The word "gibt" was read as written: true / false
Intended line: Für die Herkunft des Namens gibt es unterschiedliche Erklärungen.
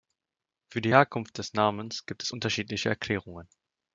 true